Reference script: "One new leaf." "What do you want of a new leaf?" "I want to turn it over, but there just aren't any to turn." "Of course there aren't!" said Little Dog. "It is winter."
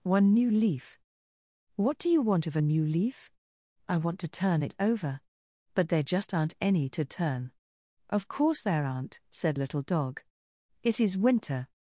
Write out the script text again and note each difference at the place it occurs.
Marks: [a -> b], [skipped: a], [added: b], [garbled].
"One new leaf." "What do you want of a new leaf?" "I want to turn it over, but there just aren't any to turn." "Of course there aren't!" said Little Dog. "It is winter."